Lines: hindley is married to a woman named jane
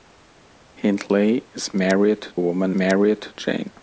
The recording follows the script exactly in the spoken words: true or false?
false